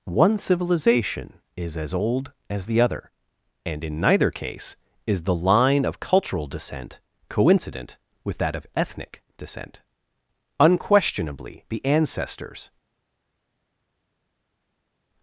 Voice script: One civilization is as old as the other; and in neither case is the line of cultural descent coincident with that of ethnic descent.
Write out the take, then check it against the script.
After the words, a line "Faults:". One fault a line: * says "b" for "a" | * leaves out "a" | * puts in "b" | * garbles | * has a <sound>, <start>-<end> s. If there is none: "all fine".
One civilization is as old as the other; and in neither case is the line of cultural descent coincident with that of ethnic descent. Unquestionably the ancestors
Faults:
* puts in "Unquestionably the ancestors"